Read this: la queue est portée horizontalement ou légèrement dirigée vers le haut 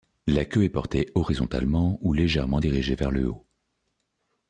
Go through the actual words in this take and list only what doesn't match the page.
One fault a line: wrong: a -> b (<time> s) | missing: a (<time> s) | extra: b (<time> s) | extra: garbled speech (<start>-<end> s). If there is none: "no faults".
no faults